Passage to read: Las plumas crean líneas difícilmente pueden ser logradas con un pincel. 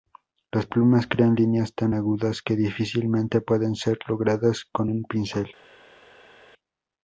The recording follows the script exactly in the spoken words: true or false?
false